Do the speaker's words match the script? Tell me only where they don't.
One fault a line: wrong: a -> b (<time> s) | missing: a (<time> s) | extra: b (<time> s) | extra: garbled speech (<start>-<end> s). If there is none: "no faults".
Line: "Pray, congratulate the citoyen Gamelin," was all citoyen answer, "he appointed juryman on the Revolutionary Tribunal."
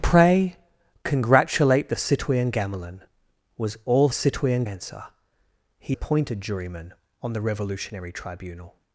no faults